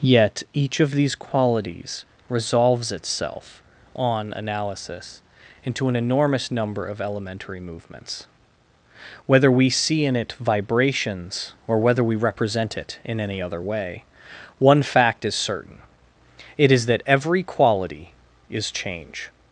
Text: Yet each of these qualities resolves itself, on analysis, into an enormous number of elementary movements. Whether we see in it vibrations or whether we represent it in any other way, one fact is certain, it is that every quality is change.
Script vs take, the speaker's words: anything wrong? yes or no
no